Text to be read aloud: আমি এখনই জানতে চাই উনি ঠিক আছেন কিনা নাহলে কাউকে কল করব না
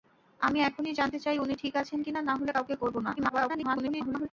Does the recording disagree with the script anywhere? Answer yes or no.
yes